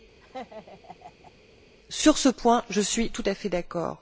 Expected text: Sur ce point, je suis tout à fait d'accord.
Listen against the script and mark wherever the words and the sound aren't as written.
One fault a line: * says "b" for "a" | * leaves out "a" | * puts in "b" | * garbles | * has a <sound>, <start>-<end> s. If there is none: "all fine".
* has a laugh, 0.2-1.3 s